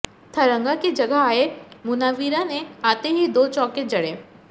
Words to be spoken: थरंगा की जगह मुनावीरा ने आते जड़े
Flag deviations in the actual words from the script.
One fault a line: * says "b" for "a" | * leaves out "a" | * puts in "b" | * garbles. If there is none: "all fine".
* puts in "आए"
* puts in "ही दो चौके"